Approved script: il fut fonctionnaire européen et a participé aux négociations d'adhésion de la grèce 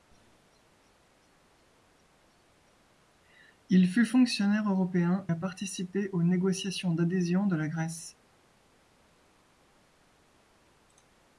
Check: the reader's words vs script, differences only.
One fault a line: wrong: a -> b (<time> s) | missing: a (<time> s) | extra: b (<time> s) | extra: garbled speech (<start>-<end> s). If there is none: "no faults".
missing: et (5.3 s)